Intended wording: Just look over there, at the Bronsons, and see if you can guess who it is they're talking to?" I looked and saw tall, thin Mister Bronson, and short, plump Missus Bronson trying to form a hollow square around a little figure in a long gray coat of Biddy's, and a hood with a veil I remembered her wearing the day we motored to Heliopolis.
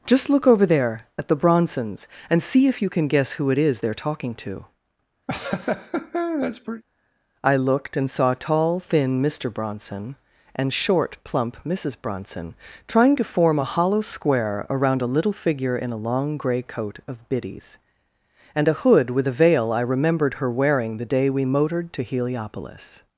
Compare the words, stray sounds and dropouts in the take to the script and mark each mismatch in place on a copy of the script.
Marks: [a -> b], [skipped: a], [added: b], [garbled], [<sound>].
Just look over there, at the Bronsons, and see if you can guess who it is they're talking to?" [laugh] I looked and saw tall, thin Mister Bronson, and short, plump Missus Bronson trying to form a hollow square around a little figure in a long gray coat of Biddy's, and a hood with a veil I remembered her wearing the day we motored to Heliopolis.